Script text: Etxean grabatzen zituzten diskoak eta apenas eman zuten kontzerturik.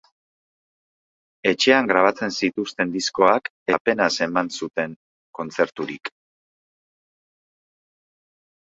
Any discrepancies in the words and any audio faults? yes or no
yes